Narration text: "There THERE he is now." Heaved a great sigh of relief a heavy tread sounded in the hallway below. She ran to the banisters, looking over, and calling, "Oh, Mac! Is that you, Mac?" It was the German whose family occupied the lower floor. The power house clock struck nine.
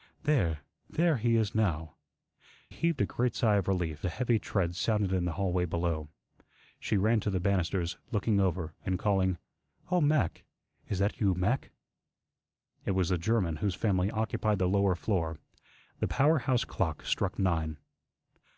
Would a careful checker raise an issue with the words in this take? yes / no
no